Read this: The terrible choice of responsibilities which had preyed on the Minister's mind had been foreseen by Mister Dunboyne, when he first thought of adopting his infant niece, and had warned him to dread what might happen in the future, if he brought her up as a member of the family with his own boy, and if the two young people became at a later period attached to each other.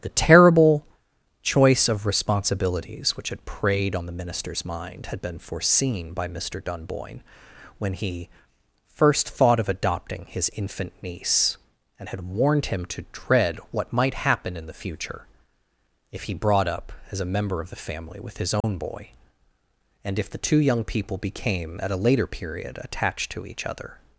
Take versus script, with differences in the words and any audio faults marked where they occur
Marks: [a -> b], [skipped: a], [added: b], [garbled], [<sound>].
The terrible choice of responsibilities which had preyed on the Minister's mind had been foreseen by Mister Dunboyne, when he first thought of adopting his infant niece, and had warned him to dread what might happen in the future, if he brought [skipped: her] up as a member of the family with his own [dropout] boy, and if the two young people became at a later period attached to each other.